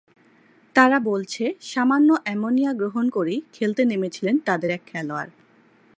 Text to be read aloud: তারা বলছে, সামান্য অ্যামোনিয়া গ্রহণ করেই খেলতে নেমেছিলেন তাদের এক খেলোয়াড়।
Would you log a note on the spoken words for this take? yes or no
no